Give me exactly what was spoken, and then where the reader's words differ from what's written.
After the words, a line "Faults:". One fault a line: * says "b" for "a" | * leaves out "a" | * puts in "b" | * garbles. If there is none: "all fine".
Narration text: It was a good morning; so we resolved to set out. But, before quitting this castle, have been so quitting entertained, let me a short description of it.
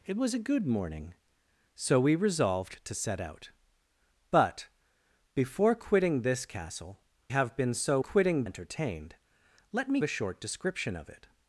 It was a good morning; so we resolved to set out. But, before quitting this castle, have been so quitting entertained, let me a short description of it.
Faults:
all fine